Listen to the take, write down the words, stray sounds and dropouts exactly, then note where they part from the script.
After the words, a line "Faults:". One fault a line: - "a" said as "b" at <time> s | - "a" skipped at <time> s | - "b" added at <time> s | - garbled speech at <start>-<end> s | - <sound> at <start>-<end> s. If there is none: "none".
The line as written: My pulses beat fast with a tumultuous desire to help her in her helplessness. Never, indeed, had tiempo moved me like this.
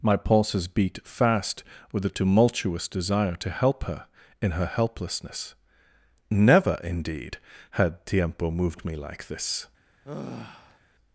My pulses beat fast with a tumultuous desire to help her in her helplessness. Never, indeed, had tiempo moved me like this.
Faults:
- sigh at 10.0-10.8 s